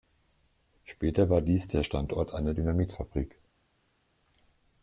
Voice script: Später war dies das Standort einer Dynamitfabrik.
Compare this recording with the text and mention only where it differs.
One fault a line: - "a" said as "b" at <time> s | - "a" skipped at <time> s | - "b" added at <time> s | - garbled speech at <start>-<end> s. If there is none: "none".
- "das" said as "der" at 1.7 s